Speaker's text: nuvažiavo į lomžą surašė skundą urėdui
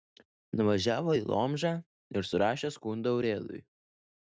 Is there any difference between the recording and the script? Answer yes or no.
yes